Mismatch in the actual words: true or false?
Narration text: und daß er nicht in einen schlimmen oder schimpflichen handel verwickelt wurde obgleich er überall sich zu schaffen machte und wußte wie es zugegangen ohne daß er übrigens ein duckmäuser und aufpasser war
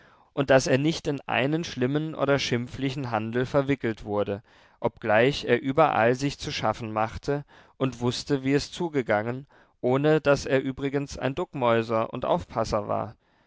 false